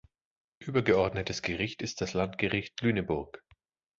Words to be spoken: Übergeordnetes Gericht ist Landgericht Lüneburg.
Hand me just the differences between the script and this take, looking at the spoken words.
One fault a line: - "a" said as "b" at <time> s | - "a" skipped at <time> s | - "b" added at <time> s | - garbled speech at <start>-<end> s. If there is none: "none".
- "das" added at 2.0 s